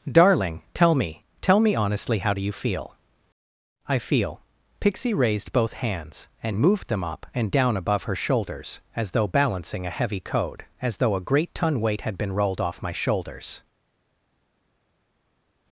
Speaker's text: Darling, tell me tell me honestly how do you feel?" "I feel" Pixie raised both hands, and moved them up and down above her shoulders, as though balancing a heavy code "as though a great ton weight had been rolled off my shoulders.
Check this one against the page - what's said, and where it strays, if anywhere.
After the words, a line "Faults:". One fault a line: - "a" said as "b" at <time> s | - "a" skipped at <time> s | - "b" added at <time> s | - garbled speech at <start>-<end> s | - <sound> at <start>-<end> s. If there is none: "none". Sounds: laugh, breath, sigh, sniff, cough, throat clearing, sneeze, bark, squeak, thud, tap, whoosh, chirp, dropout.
Darling, tell me tell me honestly how do you feel?" "I feel" Pixie raised both hands, and moved them up and down above her shoulders, as though balancing a heavy code "as though a great ton weight had been rolled off my shoulders.
Faults:
none